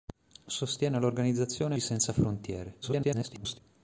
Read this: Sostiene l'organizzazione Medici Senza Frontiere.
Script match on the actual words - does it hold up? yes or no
no